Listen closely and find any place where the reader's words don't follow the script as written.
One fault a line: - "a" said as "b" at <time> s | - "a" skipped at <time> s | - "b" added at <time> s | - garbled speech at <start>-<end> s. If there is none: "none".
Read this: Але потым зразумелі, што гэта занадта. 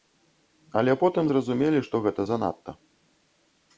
none